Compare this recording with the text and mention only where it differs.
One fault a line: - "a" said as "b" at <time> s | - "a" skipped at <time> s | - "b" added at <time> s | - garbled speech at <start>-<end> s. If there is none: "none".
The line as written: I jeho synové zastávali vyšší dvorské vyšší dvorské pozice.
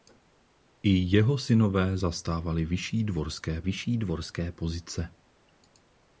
none